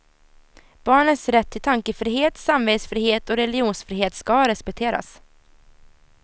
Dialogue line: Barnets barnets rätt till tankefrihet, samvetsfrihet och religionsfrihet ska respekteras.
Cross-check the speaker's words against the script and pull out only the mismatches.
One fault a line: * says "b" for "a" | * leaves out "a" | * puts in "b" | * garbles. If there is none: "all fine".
* leaves out "barnets"